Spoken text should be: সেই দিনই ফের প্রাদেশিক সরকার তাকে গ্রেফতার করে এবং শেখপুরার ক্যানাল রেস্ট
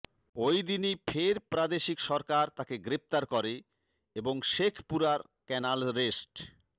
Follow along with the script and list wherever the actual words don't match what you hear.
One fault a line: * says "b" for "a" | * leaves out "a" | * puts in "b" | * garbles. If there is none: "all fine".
* says "ওই" for "সেই"